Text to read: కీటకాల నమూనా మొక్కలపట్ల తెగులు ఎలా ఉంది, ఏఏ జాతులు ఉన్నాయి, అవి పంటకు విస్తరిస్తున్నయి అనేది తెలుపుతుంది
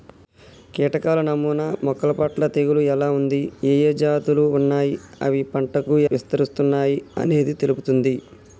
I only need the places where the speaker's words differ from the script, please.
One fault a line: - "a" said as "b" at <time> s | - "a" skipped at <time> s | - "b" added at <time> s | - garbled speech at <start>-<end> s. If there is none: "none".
none